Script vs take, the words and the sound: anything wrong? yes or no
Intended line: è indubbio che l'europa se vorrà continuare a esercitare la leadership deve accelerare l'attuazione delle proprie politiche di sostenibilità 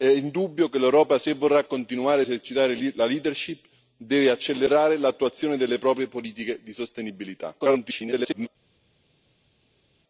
yes